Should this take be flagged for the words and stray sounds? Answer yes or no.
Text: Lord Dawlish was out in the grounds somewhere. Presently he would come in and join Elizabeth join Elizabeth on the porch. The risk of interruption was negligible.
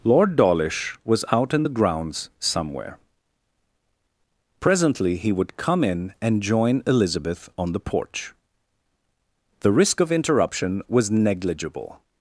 yes